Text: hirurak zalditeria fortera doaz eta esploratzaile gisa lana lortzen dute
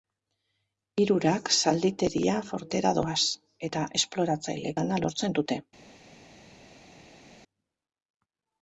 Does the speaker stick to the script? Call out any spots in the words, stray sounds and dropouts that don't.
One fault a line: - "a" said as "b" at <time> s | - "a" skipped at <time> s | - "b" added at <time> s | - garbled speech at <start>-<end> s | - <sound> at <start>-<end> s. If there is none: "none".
- "gisa" skipped at 4.8 s